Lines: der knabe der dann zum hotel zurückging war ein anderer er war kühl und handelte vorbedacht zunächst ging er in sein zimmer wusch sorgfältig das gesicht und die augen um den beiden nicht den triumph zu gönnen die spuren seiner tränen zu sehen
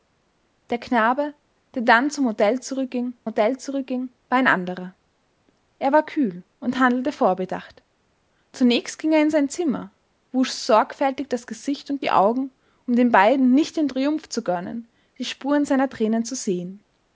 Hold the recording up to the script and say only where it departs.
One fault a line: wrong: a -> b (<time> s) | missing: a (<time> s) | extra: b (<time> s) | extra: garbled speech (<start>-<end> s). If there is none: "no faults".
extra: hotel zurückging (3.2 s)